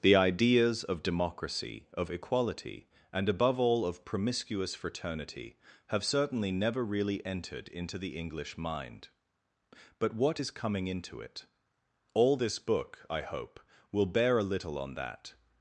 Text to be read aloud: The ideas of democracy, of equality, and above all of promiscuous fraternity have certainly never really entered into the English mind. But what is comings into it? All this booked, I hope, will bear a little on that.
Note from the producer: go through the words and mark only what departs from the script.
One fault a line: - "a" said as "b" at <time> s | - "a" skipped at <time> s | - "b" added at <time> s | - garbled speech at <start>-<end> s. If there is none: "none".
- "comings" said as "coming" at 10.5 s
- "booked" said as "book" at 12.6 s